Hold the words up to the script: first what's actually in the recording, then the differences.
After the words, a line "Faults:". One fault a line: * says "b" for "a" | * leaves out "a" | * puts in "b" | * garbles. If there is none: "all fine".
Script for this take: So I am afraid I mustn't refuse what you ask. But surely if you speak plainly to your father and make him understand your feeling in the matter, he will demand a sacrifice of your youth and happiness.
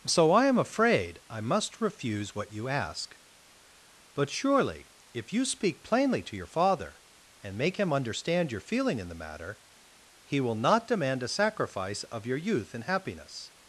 So I am afraid I must refuse what you ask. But surely if you speak plainly to your father and make him understand your feeling in the matter, he will not demand a sacrifice of your youth and happiness.
Faults:
* says "must" for "mustn't"
* puts in "not"